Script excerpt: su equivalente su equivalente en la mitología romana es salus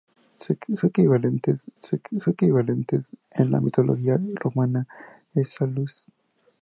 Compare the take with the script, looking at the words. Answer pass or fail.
pass